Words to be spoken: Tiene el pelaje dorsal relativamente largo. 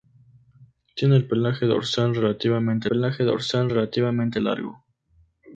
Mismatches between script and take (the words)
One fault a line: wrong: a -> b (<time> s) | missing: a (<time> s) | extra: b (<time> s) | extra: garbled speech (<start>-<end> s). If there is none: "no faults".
extra: pelaje dorsal relativamente (2.9 s)